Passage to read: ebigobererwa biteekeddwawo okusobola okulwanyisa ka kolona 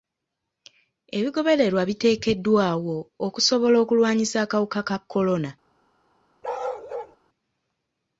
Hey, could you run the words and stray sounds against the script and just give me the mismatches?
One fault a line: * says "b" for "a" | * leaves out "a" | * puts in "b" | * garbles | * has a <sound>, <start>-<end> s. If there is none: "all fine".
* puts in "akawuka"
* has a bark, 6.4-7.2 s